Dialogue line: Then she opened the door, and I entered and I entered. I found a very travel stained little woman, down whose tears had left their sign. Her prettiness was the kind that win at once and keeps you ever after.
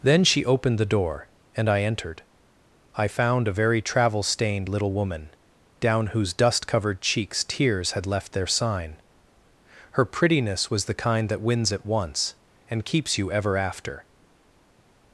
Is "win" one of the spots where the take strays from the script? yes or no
yes